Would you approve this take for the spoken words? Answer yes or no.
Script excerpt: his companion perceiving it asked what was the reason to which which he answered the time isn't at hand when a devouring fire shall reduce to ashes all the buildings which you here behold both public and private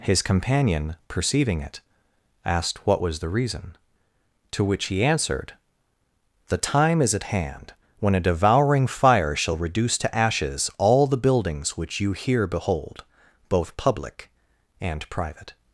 no